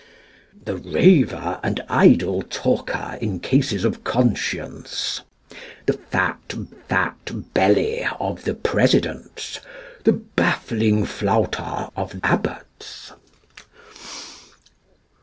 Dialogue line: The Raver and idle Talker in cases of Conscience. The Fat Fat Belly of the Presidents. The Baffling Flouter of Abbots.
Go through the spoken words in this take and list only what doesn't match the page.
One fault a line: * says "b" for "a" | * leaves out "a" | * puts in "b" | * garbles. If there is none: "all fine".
all fine